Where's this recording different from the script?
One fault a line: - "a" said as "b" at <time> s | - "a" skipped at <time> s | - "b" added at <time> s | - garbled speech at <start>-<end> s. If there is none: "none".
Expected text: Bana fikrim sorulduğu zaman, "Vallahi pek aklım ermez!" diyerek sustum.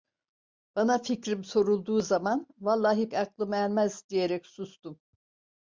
- "pek" skipped at 3.1 s